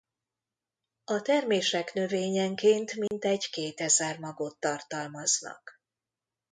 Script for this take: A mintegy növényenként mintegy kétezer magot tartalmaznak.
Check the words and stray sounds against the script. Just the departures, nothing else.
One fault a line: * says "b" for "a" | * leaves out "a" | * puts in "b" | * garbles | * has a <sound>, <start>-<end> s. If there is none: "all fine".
* says "termések" for "mintegy"
* has a dropout, 3.1-3.1 s